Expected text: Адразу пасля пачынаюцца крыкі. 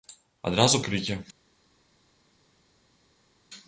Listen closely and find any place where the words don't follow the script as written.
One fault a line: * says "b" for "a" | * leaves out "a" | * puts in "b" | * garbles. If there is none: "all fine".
* leaves out "пасля пачынаюцца"